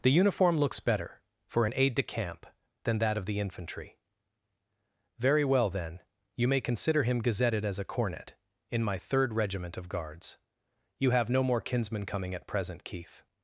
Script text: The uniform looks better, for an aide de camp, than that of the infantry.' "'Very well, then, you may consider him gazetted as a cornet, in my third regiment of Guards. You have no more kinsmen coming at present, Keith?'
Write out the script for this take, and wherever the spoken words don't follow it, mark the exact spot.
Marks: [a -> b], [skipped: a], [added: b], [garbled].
The uniform looks better, for an aide de camp, than that of the infantry.' "'Very well, then, you may consider him gazetted as a cornet, in my third regiment of Guards. You have no more kinsmen coming at present, Keith?'